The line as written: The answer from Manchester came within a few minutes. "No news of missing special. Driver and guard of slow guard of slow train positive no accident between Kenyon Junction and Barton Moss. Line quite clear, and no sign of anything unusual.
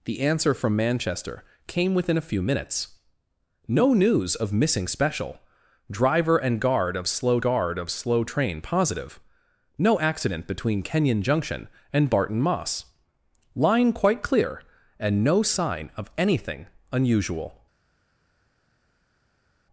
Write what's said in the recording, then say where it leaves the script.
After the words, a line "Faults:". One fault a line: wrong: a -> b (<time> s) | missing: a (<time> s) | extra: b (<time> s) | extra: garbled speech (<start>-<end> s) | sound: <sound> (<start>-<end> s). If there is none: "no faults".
The answer from Manchester came within a few minutes. "No news of missing special. Driver and guard of slow guard of slow train positive no accident between Kenyon Junction and Barton Moss. Line quite clear, and no sign of anything unusual.
Faults:
no faults